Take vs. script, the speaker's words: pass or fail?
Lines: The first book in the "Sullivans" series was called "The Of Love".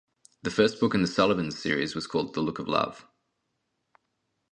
fail